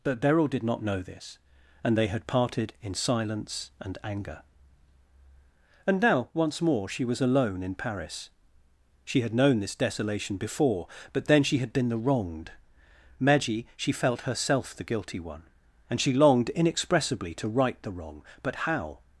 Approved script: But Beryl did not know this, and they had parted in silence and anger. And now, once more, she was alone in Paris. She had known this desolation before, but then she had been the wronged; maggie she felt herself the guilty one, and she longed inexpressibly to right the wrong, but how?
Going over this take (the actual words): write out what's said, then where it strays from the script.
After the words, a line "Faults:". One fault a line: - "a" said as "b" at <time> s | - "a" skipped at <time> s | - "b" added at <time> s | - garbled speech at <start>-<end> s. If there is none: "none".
But Beryl did not know this, and they had parted in silence and anger. And now, once more, she was alone in Paris. She had known this desolation before, but then she had been the wronged; maggie she felt herself the guilty one, and she longed inexpressibly to right the wrong, but how?
Faults:
none